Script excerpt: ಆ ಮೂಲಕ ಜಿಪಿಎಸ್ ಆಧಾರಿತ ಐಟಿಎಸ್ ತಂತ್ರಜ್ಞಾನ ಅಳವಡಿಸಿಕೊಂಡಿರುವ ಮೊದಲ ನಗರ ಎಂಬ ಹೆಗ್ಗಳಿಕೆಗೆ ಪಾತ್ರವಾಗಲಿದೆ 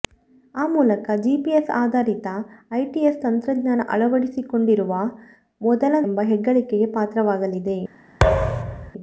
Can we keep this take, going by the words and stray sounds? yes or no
no